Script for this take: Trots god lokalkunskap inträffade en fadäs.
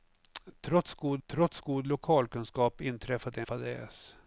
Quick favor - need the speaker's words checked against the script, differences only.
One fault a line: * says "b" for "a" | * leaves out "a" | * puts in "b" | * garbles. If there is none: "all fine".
* puts in "trots god"
* leaves out "en"